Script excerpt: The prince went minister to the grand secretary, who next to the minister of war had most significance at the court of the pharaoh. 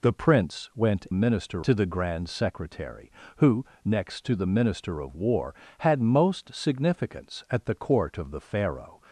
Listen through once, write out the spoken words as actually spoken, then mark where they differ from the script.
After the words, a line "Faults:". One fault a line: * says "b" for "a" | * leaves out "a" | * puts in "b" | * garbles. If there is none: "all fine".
The prince went minister to the grand secretary, who next to the minister of war had most significance at the court of the pharaoh.
Faults:
all fine